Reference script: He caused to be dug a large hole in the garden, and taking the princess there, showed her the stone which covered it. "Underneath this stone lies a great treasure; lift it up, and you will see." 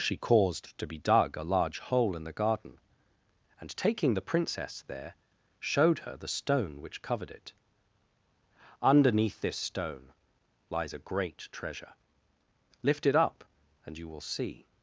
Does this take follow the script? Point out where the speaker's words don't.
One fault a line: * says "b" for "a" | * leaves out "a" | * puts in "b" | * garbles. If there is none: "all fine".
* says "She" for "He"